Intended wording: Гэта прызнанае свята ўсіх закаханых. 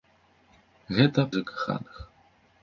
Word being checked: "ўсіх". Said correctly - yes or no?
no